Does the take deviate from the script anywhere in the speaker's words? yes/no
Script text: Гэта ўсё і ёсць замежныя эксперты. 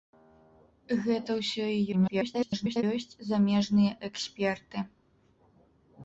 yes